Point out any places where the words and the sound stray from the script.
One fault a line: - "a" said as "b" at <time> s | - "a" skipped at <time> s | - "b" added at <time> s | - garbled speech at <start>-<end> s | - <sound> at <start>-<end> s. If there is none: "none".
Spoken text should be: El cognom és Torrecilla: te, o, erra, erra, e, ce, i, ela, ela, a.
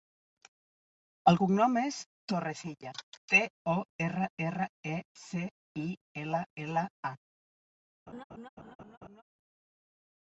- laugh at 8.1-9.2 s